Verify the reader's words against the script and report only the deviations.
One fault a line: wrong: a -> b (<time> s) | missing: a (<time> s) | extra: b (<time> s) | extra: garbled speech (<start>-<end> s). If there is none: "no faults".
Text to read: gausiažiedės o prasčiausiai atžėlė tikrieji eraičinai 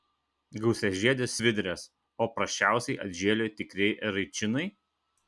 extra: svidrės (1.4 s)